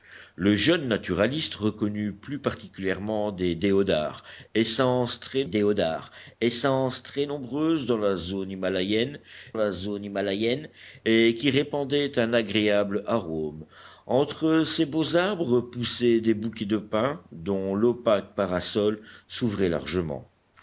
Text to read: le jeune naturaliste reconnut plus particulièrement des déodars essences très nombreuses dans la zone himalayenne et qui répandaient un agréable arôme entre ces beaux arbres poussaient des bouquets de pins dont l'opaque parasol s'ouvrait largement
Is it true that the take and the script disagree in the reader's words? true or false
true